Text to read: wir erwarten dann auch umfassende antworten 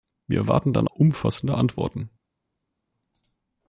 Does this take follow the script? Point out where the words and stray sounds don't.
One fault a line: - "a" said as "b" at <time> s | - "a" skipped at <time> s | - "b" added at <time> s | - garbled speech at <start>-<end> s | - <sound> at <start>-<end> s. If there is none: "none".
- "auch" skipped at 0.9 s